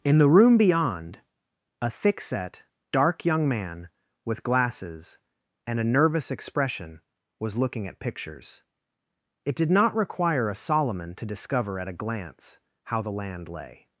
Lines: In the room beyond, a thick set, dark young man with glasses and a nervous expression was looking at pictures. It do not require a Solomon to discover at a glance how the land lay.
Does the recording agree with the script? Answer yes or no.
no